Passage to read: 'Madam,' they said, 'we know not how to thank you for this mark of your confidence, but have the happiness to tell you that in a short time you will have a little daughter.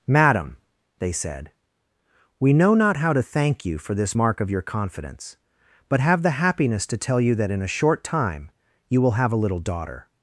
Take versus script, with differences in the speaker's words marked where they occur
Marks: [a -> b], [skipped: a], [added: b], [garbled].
'Madam,' they said, 'we know not how to thank you for this mark of your confidence, but have the happiness to tell you that in a short time you will have a little daughter.